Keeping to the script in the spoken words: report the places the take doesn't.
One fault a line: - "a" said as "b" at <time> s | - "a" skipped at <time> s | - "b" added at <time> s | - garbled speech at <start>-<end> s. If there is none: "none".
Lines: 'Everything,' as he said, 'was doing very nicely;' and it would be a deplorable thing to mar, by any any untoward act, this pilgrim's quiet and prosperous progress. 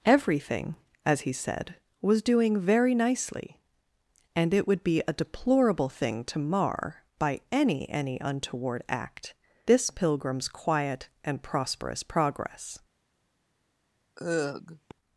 none